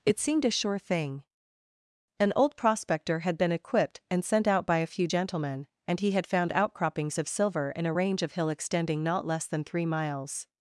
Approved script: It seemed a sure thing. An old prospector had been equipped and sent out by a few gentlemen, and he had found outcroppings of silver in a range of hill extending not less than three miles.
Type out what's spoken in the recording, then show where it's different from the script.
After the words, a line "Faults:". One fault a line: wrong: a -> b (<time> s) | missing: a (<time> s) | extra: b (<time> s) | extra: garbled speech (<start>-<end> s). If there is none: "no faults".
It seemed a sure thing. An old prospector had been equipped and sent out by a few gentlemen, and he had found outcroppings of silver in a range of hill extending not less than three miles.
Faults:
no faults